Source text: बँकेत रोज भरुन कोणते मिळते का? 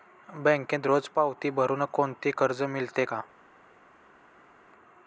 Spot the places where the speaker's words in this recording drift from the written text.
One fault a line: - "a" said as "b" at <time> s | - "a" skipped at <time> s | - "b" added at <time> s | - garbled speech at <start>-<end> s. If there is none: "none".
- "पावती" added at 1.1 s
- "कर्ज" added at 2.3 s